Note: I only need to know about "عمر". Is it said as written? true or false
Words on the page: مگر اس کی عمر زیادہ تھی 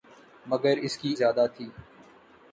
false